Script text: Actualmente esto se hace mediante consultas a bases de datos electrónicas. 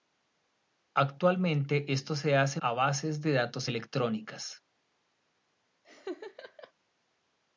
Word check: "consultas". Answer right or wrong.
wrong